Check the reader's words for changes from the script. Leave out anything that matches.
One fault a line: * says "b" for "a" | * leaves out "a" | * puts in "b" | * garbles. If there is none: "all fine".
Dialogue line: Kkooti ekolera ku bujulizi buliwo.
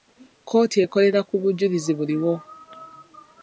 all fine